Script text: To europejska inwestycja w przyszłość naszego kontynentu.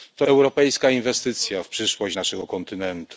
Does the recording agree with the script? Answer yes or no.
yes